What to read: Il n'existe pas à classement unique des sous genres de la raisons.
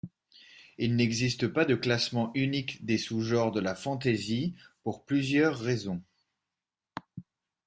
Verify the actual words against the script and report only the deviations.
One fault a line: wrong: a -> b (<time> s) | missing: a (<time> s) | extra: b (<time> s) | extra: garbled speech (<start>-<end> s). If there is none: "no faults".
wrong: à -> de (1.6 s)
extra: fantasy pour plusieurs (3.7 s)